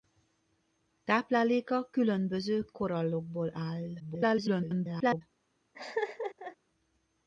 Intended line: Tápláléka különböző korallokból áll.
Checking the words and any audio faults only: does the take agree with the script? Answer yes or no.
no